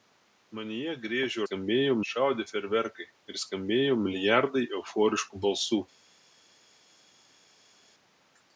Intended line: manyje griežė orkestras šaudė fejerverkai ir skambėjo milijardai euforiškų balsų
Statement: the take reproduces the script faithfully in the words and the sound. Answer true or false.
false